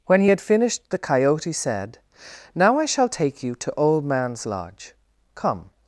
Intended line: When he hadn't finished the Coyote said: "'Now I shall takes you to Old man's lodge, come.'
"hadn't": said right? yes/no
no